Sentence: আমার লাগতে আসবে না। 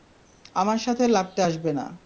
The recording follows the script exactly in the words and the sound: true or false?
false